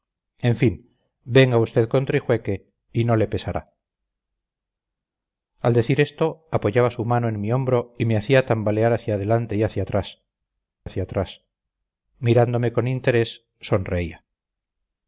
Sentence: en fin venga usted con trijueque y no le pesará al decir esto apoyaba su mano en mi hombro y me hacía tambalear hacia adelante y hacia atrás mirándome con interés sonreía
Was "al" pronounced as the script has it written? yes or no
yes